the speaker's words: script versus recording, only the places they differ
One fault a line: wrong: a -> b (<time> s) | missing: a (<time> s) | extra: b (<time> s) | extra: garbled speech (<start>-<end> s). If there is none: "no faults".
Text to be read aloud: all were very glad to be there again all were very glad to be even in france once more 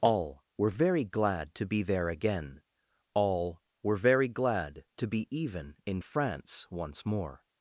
no faults